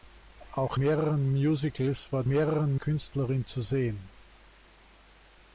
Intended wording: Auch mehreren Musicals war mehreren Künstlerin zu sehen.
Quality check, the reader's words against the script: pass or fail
pass